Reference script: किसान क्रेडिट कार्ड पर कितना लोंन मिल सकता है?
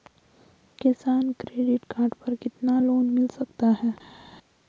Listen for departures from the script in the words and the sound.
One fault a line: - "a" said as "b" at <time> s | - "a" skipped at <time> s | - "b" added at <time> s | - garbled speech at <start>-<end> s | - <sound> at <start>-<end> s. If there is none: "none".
none